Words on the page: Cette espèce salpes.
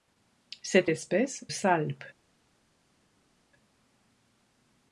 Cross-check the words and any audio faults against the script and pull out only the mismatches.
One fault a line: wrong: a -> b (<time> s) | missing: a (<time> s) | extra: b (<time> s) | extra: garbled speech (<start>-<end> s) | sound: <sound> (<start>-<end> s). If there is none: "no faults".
no faults